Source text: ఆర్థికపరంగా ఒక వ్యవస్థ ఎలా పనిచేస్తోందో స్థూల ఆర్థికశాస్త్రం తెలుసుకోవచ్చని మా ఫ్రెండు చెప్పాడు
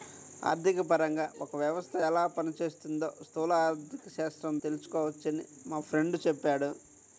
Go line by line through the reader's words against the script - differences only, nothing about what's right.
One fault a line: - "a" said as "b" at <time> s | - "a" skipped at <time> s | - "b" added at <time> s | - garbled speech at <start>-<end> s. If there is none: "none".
none